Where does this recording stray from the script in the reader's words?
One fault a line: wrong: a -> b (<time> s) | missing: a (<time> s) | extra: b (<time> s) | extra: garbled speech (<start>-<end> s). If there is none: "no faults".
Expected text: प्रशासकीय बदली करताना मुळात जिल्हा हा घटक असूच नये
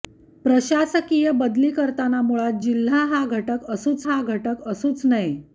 extra: हा घटक असूच (4.0 s)